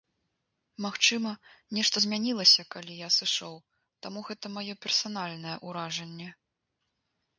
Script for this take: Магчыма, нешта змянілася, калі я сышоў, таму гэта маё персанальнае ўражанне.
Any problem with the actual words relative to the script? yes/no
no